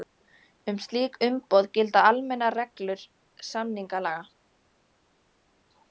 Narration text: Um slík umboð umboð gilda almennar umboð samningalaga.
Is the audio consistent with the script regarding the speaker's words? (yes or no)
no